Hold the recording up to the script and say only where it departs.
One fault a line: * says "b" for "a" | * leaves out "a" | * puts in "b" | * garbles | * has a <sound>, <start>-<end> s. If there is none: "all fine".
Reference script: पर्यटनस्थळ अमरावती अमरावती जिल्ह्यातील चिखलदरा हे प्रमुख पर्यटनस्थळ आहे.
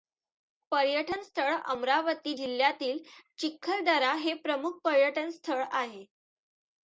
* leaves out "अमरावती"